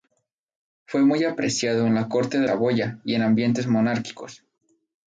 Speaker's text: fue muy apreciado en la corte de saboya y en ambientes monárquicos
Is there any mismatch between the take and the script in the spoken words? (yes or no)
no